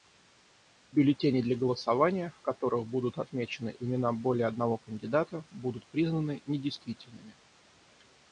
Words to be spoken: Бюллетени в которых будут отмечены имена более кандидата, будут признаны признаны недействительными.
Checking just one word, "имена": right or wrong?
right